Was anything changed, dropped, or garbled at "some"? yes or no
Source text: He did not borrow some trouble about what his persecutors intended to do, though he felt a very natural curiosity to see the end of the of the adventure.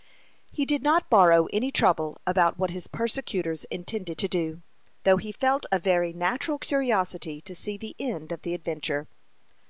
yes